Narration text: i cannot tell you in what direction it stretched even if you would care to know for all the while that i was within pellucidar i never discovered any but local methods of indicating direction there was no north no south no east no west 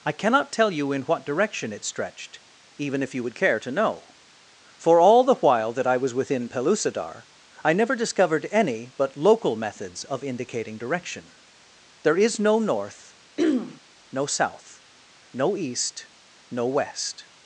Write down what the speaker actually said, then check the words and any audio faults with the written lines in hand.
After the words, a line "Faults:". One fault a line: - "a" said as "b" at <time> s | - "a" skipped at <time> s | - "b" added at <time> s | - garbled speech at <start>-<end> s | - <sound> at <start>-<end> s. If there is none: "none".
i cannot tell you in what direction it stretched even if you would care to know for all the while that i was within pellucidar i never discovered any but local methods of indicating direction there is no north no south no east no west
Faults:
- "was" said as "is" at 12.2 s
- throat clearing at 13.4-13.8 s